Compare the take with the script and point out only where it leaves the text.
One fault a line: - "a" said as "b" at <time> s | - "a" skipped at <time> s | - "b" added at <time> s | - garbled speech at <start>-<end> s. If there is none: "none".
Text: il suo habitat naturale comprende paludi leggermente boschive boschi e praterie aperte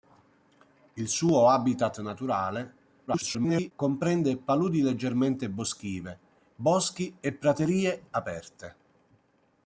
- garbled speech at 3.1-3.7 s